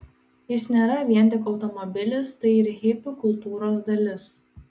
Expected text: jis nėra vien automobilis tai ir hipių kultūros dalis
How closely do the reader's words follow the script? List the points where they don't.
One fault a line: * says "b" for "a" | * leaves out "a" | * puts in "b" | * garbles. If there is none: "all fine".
* puts in "tik"